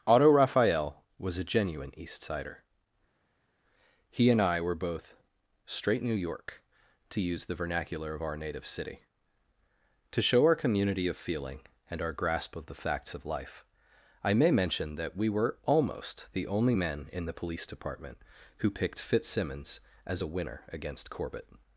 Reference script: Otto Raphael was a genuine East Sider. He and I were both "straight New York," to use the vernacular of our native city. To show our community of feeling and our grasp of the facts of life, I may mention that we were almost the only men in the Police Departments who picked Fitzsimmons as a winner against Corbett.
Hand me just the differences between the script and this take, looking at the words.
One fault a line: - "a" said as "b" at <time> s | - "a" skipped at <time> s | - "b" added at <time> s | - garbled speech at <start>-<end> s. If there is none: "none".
- "Departments" said as "Department" at 17.7 s